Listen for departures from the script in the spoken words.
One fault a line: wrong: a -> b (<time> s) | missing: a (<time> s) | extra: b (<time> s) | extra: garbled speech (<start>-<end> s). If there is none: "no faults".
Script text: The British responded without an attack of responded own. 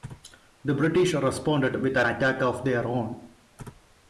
wrong: without -> with (1.8 s)
wrong: responded -> their (2.6 s)